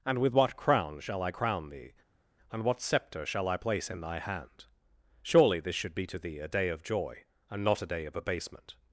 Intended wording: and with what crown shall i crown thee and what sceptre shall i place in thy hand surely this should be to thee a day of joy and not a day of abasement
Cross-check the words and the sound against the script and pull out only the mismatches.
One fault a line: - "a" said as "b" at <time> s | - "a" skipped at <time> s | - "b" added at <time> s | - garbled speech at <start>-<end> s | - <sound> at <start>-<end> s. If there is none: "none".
none